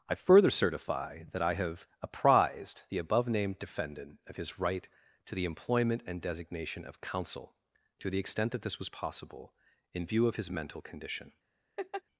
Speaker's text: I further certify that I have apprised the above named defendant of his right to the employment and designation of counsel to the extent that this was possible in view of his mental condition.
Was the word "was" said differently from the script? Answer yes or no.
no